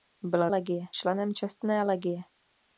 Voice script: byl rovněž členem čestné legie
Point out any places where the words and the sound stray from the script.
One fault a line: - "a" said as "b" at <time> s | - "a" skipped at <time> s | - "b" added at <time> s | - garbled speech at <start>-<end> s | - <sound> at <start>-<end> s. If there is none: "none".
- "rovněž" said as "legie" at 0.5 s